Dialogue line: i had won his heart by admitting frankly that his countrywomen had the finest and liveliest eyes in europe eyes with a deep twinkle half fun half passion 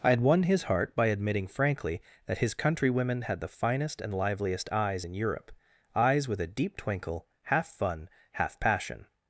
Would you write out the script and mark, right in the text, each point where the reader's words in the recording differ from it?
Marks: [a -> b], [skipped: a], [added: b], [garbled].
i had won his heart by admitting frankly that his countrywomen had the finest and liveliest eyes in europe eyes with a deep twinkle half fun half passion